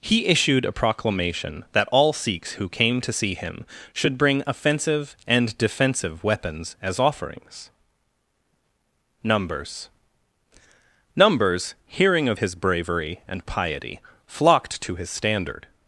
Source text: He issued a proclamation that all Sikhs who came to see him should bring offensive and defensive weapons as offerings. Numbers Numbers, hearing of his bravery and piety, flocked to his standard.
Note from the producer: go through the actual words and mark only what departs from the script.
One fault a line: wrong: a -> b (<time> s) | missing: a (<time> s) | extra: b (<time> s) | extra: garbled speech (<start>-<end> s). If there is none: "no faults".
no faults